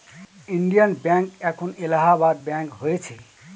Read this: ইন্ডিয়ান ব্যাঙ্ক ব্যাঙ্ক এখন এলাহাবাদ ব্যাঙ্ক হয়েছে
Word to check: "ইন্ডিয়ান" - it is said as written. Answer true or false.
true